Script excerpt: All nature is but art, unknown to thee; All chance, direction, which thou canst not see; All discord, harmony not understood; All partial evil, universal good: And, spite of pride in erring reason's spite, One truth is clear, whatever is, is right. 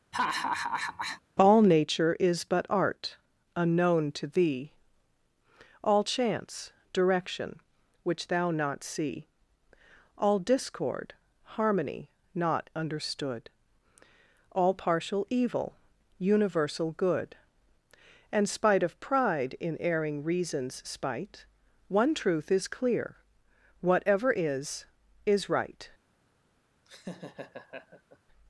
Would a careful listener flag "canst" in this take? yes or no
yes